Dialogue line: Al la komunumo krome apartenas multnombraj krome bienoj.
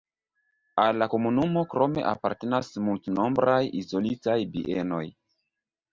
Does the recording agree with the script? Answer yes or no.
no